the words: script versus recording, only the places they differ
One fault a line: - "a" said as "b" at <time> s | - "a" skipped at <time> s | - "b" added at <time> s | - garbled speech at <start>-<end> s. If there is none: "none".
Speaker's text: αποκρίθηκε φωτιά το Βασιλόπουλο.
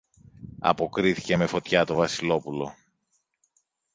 - "με" added at 1.3 s